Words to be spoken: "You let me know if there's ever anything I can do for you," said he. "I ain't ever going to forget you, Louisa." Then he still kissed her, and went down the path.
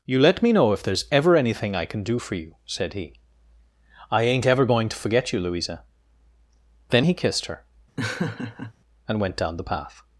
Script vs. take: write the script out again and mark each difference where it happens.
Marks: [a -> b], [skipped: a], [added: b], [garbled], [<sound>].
"You let me know if there's ever anything I can do for you," said he. "I ain't ever going to forget you, Louisa." Then he [skipped: still] kissed her, [laugh] and went down the path.